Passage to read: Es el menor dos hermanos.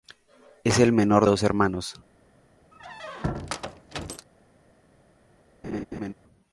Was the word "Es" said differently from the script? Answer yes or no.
no